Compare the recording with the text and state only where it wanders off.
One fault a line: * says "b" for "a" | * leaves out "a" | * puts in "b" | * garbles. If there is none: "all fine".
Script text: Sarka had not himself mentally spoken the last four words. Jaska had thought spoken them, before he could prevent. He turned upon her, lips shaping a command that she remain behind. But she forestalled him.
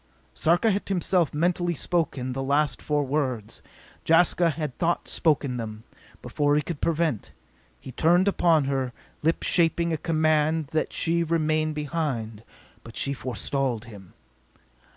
* leaves out "not"